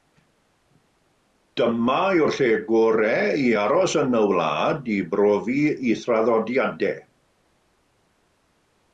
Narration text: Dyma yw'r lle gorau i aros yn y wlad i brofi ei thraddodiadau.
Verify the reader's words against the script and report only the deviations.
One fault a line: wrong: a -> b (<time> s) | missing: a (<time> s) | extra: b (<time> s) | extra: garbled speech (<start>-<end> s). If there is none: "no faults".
no faults